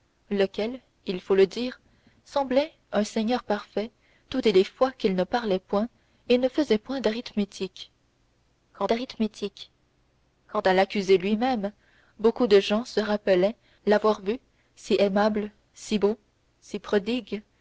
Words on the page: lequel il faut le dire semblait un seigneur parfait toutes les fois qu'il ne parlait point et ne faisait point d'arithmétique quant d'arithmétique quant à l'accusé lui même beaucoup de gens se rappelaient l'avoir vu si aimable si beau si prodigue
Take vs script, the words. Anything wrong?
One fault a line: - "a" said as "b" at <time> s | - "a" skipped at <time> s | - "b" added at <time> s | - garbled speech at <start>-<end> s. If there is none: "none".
none